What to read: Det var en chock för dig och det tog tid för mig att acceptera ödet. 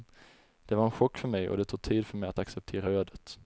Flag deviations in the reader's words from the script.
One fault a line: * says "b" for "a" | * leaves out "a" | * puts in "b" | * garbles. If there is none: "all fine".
* says "mig" for "dig"